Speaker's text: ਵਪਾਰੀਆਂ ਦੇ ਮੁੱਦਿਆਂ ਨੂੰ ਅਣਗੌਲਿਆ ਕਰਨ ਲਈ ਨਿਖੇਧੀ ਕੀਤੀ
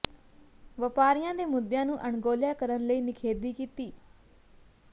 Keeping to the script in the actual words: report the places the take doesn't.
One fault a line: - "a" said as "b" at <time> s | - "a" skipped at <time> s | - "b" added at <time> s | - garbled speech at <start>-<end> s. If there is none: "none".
none